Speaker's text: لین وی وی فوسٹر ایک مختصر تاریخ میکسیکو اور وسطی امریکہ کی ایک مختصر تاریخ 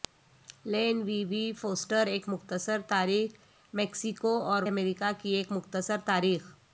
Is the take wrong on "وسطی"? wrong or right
wrong